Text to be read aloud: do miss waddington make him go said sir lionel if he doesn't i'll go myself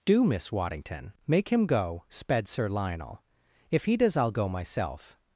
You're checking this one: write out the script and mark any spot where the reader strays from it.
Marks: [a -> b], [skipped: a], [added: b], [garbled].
do miss waddington make him go [said -> sped] sir lionel if he [doesn't -> does] i'll go myself